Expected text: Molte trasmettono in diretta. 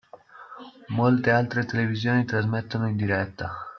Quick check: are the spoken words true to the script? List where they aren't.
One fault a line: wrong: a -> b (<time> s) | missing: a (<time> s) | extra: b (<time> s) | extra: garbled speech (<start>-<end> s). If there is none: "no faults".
extra: altre televisioni (1.3 s)